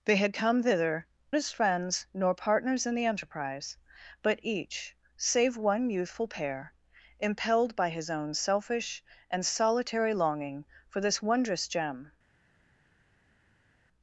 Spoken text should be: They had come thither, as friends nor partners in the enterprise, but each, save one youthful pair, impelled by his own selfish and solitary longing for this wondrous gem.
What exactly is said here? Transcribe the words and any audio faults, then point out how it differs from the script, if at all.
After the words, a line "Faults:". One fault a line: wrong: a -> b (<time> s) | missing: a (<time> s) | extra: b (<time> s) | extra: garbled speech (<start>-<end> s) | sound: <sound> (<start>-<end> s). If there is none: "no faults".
They had come thither, as friends nor partners in the enterprise, but each, save one youthful pair, impelled by his own selfish and solitary longing for this wondrous gem.
Faults:
no faults